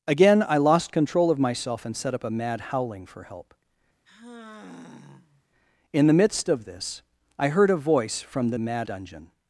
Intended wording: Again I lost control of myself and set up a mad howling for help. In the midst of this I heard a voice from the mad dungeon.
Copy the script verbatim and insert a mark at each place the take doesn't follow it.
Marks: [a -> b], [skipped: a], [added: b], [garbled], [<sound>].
Again I lost control of myself and set up a mad howling for help. [sigh] In the midst of this I heard a voice from the mad dungeon.